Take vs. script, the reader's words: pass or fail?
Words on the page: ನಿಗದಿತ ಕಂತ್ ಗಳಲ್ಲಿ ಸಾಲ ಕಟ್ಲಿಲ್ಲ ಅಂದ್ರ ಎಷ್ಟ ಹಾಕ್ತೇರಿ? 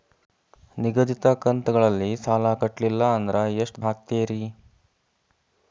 pass